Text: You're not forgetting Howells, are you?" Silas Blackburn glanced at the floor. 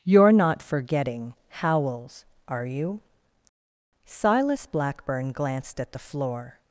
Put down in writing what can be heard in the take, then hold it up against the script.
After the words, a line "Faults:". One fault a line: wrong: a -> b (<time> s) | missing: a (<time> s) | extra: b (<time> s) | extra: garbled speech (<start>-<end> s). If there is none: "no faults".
You're not forgetting Howells, are you?" Silas Blackburn glanced at the floor.
Faults:
no faults